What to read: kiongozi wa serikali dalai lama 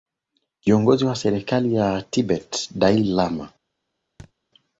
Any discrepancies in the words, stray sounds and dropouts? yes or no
yes